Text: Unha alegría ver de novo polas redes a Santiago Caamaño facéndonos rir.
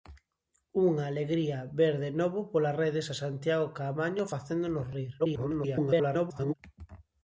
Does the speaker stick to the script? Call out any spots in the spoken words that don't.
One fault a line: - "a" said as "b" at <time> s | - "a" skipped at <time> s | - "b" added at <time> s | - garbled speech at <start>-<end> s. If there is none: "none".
- garbled speech at 5.2-6.5 s